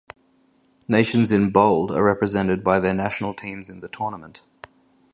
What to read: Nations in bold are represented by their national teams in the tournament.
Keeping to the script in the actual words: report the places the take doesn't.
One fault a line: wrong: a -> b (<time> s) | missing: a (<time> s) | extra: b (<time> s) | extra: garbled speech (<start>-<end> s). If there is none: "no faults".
no faults